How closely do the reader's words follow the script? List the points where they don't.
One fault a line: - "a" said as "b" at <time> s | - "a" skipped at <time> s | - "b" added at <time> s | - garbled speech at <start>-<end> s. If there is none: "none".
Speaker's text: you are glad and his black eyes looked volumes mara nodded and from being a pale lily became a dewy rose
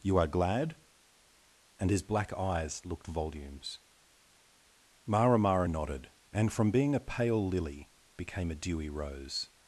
- "mara" added at 5.4 s